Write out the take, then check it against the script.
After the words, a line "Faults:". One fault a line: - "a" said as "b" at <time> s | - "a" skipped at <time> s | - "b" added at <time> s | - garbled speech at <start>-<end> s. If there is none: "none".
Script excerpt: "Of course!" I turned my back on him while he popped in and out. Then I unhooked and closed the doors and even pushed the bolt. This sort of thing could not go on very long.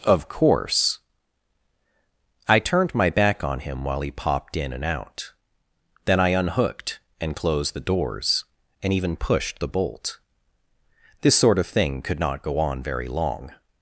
"Of course!" I turned my back on him while he popped in and out. Then I unhooked and closed the doors and even pushed the bolt. This sort of thing could not go on very long.
Faults:
none